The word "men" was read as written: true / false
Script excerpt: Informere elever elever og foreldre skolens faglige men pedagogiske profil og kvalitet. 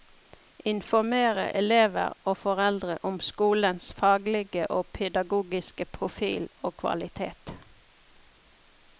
false